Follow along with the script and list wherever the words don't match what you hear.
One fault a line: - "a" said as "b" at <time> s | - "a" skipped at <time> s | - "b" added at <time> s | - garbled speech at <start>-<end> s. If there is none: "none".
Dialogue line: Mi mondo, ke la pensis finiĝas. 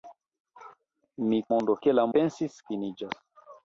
none